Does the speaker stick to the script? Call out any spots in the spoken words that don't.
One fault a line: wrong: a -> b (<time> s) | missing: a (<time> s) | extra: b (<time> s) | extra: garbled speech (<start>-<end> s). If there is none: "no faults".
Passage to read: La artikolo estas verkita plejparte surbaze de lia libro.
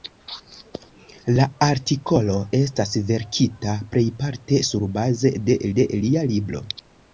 extra: de (5.8 s)